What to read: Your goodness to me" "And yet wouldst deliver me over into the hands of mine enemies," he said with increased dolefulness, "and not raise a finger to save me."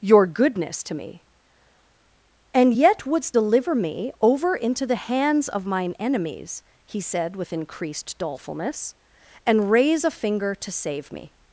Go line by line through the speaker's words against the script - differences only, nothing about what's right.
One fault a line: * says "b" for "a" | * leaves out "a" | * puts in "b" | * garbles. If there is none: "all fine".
* leaves out "not"